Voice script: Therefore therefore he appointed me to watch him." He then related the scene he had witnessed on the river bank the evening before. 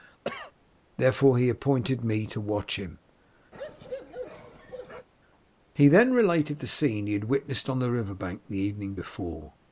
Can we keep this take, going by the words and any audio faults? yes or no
no